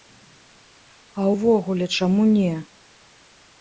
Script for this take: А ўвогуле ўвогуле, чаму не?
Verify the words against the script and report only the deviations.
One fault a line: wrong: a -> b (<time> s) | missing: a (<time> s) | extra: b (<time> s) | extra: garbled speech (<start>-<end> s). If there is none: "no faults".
missing: ўвогуле (1.8 s)